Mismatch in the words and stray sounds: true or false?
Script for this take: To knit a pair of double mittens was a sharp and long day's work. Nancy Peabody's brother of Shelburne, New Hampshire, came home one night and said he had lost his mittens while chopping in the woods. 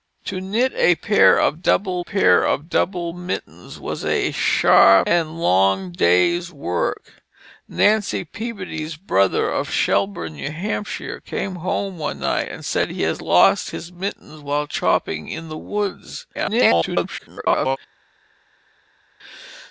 true